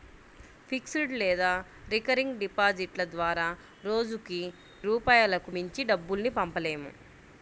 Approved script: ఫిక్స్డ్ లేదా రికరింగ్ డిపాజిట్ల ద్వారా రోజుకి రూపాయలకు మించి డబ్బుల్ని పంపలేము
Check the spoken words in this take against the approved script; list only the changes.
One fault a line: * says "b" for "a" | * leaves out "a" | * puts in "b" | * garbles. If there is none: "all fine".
all fine